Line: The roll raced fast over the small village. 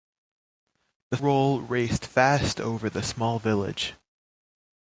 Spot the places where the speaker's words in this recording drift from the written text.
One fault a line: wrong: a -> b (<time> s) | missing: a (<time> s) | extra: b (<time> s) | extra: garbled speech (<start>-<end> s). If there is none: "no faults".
no faults